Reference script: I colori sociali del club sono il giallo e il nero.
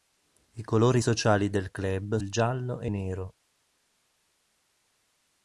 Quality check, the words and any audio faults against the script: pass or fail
fail